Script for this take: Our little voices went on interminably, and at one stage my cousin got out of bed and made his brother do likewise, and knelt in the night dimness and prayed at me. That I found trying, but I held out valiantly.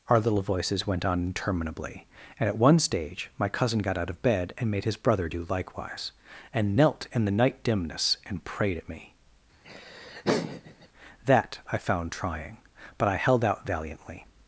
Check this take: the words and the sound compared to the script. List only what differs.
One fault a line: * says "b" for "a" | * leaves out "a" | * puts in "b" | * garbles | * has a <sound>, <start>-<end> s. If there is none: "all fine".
* has a laugh, 9.6-10.9 s